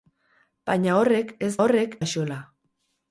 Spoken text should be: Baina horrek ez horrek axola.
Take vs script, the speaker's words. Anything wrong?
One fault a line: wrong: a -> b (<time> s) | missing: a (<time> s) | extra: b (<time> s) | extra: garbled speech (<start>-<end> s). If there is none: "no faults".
no faults